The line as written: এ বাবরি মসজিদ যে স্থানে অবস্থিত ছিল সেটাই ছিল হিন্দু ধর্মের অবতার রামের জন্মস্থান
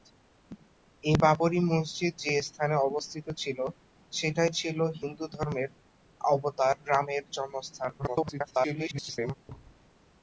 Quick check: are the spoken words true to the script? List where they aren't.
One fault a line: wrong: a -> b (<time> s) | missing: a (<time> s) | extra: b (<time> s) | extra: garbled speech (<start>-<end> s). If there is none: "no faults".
extra: garbled speech (8.0-9.3 s)